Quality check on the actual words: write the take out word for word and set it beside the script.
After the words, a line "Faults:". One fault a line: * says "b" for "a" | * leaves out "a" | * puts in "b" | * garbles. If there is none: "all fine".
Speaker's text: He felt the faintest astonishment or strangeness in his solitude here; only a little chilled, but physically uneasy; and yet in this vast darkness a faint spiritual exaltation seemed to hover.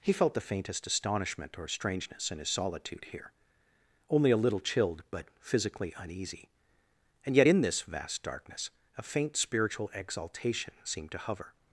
He felt the faintest astonishment or strangeness in his solitude here; only a little chilled, but physically uneasy; and yet in this vast darkness a faint spiritual exaltation seemed to hover.
Faults:
all fine